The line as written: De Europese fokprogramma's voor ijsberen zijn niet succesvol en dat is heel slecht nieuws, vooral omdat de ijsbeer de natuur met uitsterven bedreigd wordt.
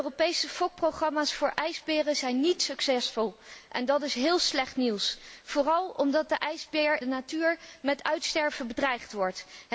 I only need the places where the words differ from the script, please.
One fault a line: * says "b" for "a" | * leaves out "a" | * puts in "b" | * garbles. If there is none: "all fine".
all fine